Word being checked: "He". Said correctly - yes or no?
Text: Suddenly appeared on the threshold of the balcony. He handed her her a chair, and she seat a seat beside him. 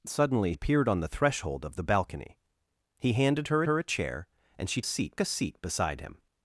yes